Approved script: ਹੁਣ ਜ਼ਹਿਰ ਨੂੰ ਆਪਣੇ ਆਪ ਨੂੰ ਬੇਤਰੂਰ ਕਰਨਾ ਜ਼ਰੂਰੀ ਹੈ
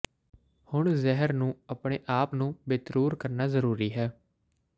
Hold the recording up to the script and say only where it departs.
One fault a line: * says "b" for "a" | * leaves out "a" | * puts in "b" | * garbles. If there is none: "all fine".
all fine